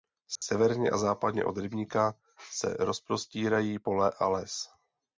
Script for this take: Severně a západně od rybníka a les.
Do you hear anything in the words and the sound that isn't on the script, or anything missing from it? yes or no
yes